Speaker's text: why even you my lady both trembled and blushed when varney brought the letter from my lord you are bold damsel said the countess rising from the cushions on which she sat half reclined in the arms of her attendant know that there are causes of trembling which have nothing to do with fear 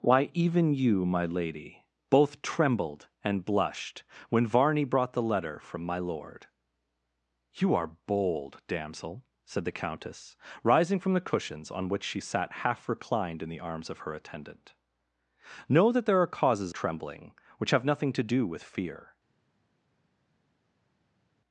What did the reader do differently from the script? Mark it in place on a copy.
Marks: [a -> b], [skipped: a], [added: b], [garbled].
why even you my lady both trembled and blushed when varney brought the letter from my lord you are bold damsel said the countess rising from the cushions on which she sat half reclined in the arms of her attendant know that there are causes [skipped: of] trembling which have nothing to do with fear